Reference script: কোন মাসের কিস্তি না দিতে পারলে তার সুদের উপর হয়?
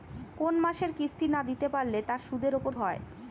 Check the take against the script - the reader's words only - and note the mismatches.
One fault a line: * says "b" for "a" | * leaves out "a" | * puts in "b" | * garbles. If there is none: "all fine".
all fine